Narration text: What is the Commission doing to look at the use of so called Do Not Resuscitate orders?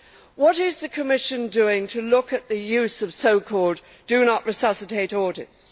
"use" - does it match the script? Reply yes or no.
yes